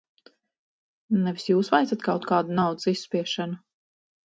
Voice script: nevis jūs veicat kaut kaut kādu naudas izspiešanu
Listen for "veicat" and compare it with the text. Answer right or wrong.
right